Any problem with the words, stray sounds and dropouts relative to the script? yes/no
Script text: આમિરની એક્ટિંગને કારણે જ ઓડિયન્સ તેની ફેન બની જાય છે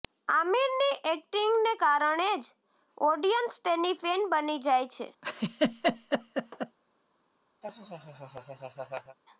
yes